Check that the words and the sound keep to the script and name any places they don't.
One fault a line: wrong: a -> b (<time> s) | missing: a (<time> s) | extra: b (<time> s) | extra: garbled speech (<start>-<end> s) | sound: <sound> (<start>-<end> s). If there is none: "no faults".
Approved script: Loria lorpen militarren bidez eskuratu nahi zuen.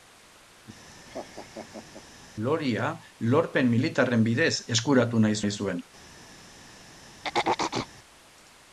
sound: laugh (0.9-2.1 s)
extra: nahi (5.4 s)
sound: throat clearing (7.2-7.9 s)